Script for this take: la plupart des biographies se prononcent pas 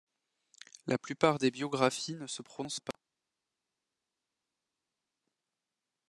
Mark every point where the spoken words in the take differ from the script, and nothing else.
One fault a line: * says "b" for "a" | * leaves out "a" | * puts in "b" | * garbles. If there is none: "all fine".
* puts in "ne"